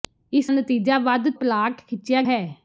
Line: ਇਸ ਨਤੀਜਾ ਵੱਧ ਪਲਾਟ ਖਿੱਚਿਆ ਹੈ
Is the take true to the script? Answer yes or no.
yes